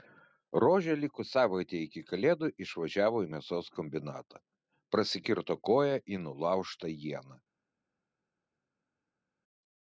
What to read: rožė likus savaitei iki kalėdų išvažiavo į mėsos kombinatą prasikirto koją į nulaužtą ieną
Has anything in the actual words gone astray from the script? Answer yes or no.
no